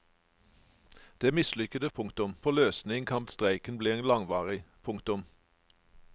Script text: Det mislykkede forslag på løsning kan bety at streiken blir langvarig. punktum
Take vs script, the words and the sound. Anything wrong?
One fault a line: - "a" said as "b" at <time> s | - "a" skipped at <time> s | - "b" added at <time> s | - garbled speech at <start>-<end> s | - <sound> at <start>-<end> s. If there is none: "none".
- "forslag" said as "punktum" at 1.9 s
- "bety" skipped at 3.3 s